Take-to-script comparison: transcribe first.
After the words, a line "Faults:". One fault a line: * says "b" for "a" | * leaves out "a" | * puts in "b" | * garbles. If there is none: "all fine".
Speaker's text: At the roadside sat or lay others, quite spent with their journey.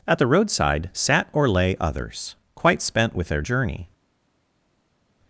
At the roadside sat or lay others, quite spent with their journey.
Faults:
all fine